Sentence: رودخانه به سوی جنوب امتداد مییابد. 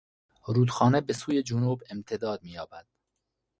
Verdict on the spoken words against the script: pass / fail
pass